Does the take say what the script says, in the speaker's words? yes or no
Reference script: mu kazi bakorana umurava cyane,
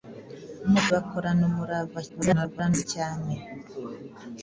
no